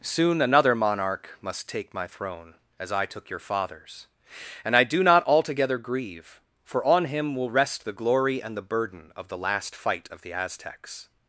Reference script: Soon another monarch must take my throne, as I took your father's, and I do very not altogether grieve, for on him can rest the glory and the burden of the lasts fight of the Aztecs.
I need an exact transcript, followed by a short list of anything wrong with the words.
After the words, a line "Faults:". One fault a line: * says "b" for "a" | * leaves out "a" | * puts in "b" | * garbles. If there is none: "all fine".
Soon another monarch must take my throne, as I took your father's, and I do not altogether grieve, for on him will rest the glory and the burden of the last fight of the Aztecs.
Faults:
* leaves out "very"
* says "will" for "can"
* says "last" for "lasts"